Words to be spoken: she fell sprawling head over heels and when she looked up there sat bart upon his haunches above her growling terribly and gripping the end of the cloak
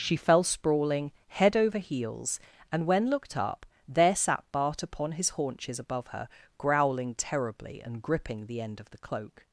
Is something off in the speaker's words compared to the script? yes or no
yes